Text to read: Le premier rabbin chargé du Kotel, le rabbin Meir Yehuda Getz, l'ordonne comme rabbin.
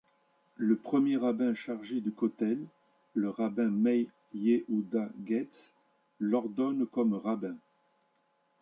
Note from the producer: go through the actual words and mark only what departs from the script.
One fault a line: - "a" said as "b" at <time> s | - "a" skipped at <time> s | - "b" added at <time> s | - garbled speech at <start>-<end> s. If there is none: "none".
none